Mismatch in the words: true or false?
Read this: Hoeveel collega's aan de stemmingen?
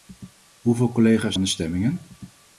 false